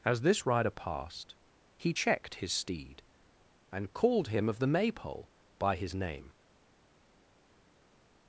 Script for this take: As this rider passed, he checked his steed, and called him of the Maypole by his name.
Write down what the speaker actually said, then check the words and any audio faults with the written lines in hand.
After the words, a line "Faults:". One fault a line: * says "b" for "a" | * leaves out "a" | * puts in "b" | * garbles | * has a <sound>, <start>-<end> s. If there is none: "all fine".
As this rider passed, he checked his steed, and called him of the Maypole by his name.
Faults:
all fine